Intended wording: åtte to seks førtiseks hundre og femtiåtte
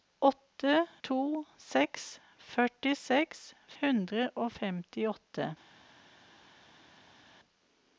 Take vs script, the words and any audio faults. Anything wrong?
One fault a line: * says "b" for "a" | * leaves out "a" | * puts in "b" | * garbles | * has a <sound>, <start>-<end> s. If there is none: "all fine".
all fine